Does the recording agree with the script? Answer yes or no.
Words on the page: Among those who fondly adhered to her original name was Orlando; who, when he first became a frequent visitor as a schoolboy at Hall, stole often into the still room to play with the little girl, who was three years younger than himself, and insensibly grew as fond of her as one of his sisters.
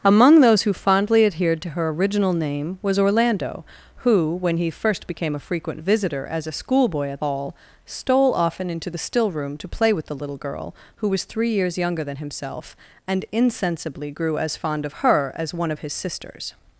yes